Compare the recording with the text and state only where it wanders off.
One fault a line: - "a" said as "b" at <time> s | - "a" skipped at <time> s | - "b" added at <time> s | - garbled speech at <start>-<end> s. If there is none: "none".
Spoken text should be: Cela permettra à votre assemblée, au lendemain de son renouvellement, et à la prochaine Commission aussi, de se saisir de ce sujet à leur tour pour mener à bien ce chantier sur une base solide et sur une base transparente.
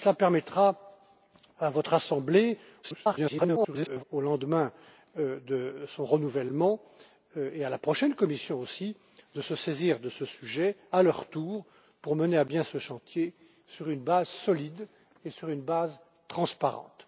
- garbled speech at 2.8-4.0 s